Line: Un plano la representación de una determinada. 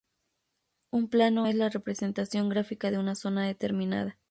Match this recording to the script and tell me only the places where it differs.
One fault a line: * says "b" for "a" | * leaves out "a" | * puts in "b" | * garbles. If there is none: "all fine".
* puts in "es"
* puts in "gráfica"
* puts in "zona"